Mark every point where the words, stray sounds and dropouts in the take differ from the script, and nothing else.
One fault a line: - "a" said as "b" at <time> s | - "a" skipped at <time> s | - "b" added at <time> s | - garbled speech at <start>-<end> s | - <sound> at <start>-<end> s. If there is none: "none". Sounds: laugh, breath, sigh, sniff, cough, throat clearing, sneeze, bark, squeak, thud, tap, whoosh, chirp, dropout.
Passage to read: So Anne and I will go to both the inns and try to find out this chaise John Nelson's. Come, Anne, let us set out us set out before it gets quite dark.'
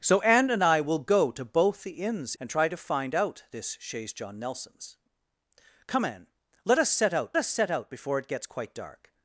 none